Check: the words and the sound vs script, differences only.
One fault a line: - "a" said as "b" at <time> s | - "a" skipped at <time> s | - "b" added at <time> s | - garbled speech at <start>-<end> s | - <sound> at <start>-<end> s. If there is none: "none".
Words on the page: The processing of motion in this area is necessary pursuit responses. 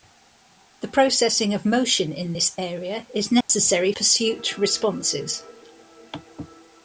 - dropout at 3.4-3.5 s